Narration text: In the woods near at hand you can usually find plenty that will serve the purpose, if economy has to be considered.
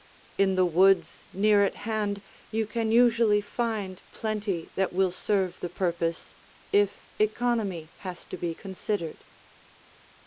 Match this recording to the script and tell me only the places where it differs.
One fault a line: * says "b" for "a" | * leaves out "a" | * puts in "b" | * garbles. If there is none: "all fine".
all fine